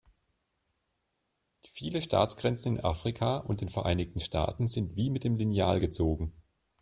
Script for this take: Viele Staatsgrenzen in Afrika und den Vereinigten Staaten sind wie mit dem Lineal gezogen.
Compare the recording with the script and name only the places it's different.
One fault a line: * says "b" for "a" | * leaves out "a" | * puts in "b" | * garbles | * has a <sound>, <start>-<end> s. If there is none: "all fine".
all fine